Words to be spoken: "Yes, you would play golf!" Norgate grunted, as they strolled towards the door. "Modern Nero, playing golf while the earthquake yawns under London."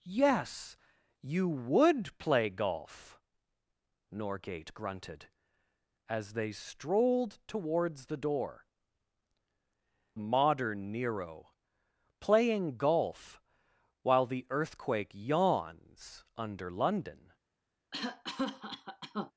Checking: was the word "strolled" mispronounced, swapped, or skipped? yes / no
no